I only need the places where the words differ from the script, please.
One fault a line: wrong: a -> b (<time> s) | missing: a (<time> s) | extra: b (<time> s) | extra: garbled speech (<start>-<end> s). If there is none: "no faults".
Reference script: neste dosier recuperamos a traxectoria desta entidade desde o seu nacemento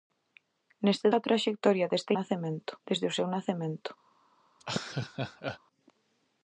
missing: dosier recuperamos (1.1 s)
wrong: entidade -> nacemento (2.2 s)